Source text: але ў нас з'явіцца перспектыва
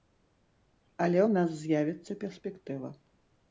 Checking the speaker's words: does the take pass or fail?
pass